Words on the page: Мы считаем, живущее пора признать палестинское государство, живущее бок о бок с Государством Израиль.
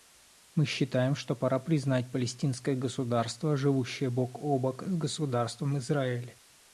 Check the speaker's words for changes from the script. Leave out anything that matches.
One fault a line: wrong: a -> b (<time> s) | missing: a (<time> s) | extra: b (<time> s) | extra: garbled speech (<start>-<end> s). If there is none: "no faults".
wrong: живущее -> что (1.1 s)